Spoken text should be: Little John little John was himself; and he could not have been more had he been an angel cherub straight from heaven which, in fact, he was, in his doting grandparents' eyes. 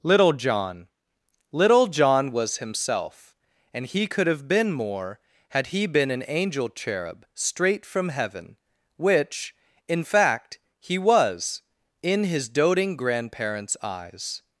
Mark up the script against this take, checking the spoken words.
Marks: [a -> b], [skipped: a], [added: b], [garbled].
Little John little John was himself; and he could [skipped: not] have been more had he been an angel cherub straight from heaven which, in fact, he was, in his doting grandparents' eyes.